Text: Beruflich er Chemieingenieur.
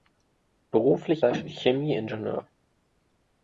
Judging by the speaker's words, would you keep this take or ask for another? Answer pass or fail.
pass